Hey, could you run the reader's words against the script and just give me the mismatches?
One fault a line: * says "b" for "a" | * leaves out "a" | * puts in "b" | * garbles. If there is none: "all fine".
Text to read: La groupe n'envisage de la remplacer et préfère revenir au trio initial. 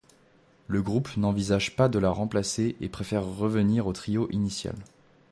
* says "Le" for "La"
* puts in "pas"